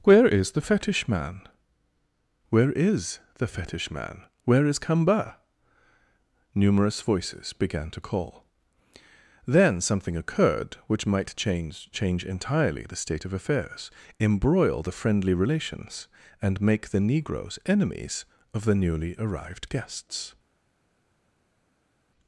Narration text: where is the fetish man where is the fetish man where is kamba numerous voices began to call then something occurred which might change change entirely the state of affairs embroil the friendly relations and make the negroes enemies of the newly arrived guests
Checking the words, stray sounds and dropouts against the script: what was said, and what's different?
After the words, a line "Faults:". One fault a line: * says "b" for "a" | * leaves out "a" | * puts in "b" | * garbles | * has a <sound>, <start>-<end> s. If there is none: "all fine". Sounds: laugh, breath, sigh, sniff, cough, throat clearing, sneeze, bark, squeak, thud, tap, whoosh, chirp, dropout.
where is the fetish man where is the fetish man where is kamba numerous voices began to call then something occurred which might change change entirely the state of affairs embroil the friendly relations and make the negroes enemies of the newly arrived guests
Faults:
all fine